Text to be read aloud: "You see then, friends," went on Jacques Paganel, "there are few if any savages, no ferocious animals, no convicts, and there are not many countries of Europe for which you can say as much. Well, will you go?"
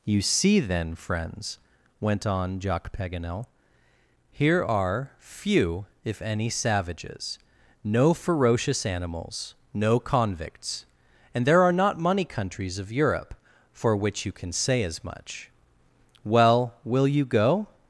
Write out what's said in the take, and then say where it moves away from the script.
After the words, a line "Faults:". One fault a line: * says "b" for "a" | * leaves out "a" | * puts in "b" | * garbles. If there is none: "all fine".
"You see then, friends," went on Jacques Paganel, "here are few if any savages, no ferocious animals, no convicts, and there are not money countries of Europe for which you can say as much. Well, will you go?"
Faults:
* says "here" for "there"
* says "money" for "many"